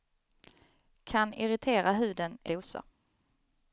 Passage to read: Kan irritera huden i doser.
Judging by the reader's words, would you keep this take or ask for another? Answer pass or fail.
pass